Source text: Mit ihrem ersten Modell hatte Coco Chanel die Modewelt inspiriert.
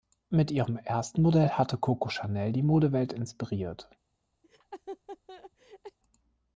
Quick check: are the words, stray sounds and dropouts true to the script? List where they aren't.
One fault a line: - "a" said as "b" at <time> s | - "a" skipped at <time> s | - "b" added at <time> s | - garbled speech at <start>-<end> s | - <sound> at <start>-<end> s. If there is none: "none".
- laugh at 4.4-6.0 s